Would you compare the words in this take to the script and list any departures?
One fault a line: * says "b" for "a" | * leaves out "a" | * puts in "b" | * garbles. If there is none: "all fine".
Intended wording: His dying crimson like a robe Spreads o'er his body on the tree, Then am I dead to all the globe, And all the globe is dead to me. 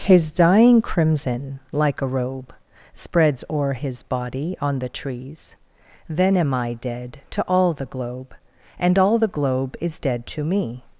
* says "trees" for "tree"